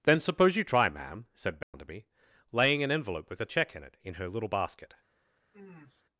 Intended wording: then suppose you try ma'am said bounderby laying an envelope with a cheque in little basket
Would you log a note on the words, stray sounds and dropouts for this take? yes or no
yes